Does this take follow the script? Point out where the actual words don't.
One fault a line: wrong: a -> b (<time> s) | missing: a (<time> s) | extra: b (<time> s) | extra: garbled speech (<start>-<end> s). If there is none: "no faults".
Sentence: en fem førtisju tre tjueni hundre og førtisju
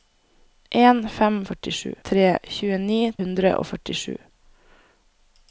no faults